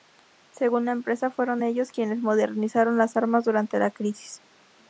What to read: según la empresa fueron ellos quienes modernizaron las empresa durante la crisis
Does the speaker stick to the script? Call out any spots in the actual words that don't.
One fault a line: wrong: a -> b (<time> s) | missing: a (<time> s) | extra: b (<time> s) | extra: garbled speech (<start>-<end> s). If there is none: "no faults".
wrong: empresa -> armas (3.2 s)